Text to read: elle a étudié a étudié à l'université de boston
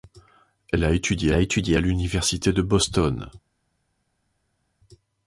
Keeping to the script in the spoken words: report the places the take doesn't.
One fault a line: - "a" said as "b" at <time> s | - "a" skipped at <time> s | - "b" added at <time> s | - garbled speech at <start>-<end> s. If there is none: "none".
none